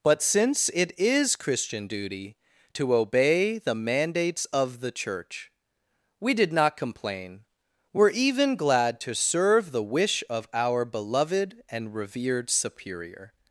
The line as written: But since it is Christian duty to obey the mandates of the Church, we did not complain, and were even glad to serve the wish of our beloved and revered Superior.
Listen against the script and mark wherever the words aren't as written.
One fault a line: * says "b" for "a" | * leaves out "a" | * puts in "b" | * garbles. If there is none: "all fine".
* leaves out "and"